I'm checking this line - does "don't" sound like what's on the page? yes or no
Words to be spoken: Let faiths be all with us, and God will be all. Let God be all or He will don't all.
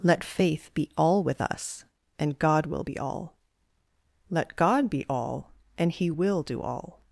no